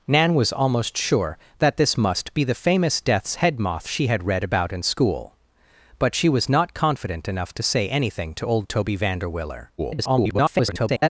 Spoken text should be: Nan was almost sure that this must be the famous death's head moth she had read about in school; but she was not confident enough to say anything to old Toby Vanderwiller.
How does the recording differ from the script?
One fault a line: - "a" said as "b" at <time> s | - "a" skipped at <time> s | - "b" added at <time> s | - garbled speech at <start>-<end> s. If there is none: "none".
- garbled speech at 9.8-11.1 s